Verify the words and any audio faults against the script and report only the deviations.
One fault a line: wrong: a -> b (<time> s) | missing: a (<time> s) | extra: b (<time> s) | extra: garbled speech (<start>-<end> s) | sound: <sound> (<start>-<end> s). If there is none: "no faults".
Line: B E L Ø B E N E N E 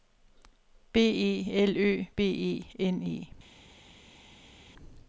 missing: N E (3.3 s)